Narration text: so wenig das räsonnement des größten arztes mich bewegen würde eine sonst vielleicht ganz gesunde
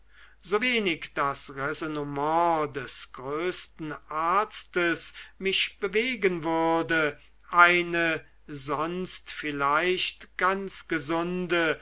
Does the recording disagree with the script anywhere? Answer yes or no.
no